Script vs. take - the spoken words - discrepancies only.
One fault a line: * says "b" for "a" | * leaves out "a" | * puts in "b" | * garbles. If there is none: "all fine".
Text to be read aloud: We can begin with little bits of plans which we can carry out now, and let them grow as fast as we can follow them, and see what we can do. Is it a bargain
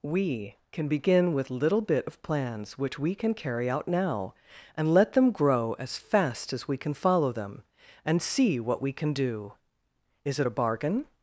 * says "bit" for "bits"